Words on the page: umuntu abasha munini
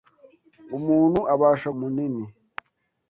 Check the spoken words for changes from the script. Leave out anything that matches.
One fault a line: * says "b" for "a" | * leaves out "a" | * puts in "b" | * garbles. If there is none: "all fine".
all fine